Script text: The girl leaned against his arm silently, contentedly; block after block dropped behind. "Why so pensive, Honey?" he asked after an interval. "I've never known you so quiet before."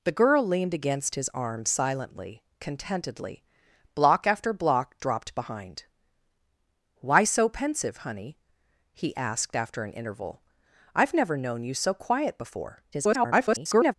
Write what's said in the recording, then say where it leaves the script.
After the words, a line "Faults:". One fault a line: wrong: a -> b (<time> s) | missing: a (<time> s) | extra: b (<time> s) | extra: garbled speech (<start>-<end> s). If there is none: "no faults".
The girl leaned against his arm silently, contentedly; block after block dropped behind. "Why so pensive, Honey?" he asked after an interval. "I've never known you so quiet before." [garbled]
Faults:
extra: garbled speech (12.9-13.9 s)